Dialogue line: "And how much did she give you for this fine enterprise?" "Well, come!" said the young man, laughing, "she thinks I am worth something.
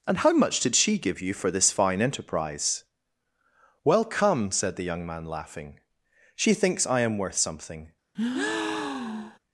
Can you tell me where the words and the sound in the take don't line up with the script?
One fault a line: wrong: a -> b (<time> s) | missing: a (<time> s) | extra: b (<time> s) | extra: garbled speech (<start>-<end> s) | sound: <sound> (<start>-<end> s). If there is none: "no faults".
sound: breath (8.1-9.4 s)